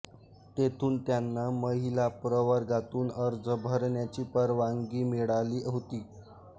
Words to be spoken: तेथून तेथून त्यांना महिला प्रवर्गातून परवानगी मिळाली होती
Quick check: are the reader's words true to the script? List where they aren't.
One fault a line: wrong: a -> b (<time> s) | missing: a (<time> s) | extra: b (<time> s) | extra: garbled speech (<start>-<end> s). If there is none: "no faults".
missing: तेथून (1.0 s)
extra: अर्ज भरण्याची (3.2 s)